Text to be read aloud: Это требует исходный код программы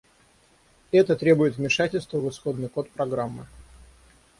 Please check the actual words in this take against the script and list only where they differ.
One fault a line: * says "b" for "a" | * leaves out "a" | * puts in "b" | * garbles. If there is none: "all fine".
* puts in "вмешательства в"